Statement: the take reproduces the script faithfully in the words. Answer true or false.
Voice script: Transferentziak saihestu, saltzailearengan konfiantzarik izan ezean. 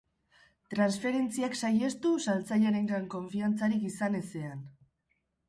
true